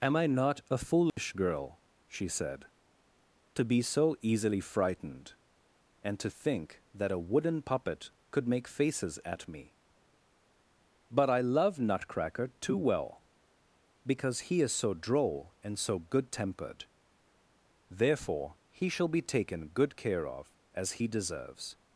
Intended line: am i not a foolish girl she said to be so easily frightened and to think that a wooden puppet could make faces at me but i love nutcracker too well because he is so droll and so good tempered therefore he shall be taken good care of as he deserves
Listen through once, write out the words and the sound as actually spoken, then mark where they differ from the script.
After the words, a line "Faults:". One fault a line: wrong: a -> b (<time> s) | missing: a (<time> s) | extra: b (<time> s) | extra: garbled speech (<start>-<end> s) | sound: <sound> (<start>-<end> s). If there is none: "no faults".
am i not a foolish girl she said to be so easily frightened and to think that a wooden puppet could make faces at me but i love nutcracker too well because he is so droll and so good tempered therefore he shall be taken good care of as he deserves
Faults:
sound: dropout (1.1-1.2 s)